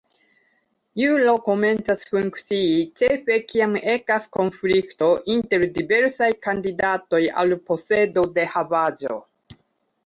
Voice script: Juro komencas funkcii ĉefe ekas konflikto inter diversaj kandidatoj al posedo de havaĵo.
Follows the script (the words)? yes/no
no